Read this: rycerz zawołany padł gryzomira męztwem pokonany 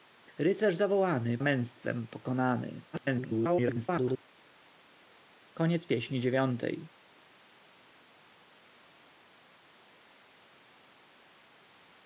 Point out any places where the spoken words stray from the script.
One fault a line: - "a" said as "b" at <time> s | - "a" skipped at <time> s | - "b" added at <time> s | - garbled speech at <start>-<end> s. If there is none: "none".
- "padł gryzomira" skipped at 1.4 s
- garbled speech at 2.9-4.2 s